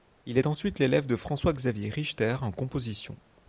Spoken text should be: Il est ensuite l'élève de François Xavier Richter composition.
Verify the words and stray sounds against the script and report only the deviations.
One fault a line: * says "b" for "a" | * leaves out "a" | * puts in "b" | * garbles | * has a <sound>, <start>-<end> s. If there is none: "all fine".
* puts in "en"